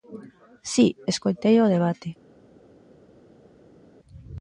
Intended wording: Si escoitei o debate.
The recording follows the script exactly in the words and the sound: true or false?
true